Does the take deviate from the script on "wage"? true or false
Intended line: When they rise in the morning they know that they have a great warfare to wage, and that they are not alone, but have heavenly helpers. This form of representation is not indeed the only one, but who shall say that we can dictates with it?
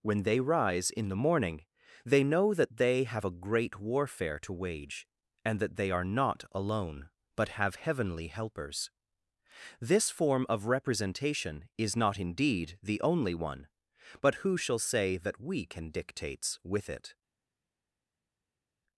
false